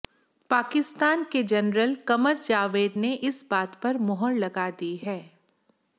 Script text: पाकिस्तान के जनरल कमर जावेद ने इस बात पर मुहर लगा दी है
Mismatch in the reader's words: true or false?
false